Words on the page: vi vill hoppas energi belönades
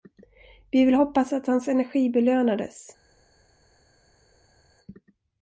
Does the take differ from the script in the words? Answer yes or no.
yes